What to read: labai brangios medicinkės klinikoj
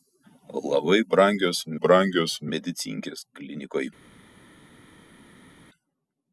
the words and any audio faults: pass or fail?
fail